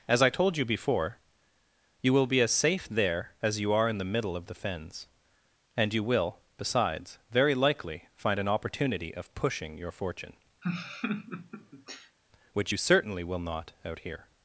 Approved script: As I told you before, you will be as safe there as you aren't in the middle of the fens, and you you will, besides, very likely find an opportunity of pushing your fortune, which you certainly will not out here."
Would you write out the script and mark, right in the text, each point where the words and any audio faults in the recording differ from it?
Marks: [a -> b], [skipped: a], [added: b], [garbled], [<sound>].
As I told you before, you will be as safe there as you [aren't -> are] in the middle of the fens, and you [skipped: you] will, besides, very likely find an opportunity of pushing your fortune, [laugh] which you certainly will not out here."